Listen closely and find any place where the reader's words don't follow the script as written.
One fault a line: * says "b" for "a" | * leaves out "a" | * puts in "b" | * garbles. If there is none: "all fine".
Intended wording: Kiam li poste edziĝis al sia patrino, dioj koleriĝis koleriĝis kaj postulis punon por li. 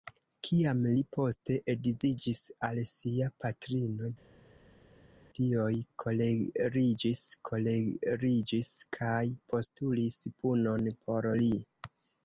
all fine